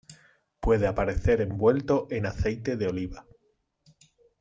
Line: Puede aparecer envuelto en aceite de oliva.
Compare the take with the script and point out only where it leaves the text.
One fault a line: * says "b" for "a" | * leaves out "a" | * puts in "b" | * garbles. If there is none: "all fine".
all fine